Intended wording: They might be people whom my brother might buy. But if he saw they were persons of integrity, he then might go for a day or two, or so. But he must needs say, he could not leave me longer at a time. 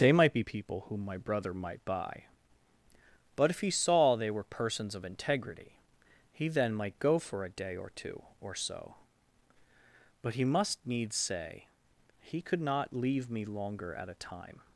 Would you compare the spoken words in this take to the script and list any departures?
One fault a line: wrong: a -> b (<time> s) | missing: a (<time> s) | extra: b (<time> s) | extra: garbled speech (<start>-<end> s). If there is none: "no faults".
no faults